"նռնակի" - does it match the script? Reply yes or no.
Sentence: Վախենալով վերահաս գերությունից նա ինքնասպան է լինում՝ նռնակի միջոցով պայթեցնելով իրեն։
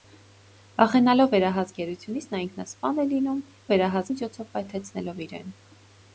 no